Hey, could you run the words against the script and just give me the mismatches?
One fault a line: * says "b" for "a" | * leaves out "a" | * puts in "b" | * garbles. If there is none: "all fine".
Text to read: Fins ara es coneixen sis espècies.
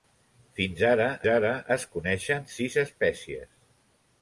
* puts in "ara"